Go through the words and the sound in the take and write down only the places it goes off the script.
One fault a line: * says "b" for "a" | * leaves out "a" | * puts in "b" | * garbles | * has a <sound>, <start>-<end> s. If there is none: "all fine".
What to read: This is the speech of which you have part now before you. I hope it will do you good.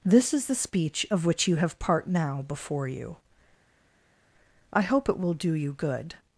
all fine